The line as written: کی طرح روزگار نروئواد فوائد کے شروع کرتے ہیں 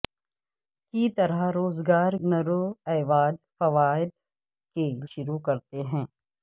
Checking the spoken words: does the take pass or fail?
pass